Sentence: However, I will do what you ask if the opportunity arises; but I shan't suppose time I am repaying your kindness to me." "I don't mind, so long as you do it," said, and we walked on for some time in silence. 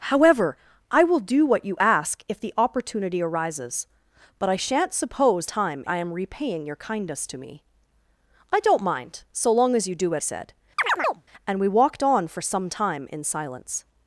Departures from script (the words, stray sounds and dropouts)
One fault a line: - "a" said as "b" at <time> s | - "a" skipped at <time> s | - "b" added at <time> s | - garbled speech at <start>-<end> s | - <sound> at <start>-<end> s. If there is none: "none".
- chirp at 10.8-11.2 s